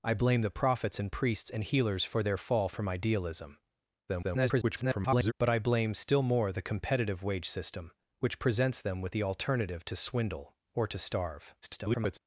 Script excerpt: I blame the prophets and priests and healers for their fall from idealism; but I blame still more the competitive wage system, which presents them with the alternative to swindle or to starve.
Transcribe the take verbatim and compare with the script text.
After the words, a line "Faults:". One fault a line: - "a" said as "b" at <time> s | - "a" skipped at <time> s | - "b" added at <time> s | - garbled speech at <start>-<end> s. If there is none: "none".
I blame the prophets and priests and healers for their fall from idealism; [garbled] but I blame still more the competitive wage system, which presents them with the alternative to swindle or to starve. [garbled]
Faults:
- garbled speech at 4.1-5.3 s
- garbled speech at 11.6-12.2 s